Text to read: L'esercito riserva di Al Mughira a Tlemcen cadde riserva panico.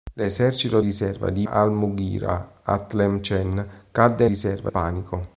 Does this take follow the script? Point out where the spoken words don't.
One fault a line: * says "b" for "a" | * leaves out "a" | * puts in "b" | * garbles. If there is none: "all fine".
all fine